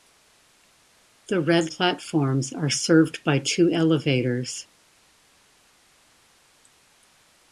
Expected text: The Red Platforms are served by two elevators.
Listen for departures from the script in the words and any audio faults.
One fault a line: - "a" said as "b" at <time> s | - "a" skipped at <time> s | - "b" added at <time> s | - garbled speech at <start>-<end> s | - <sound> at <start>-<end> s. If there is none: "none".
none